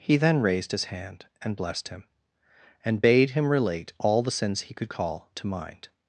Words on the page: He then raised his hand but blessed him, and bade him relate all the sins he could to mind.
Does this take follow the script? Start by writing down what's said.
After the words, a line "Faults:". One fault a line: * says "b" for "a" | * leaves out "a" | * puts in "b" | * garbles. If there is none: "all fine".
He then raised his hand and blessed him, and bade him relate all the sins he could call to mind.
Faults:
* says "and" for "but"
* puts in "call"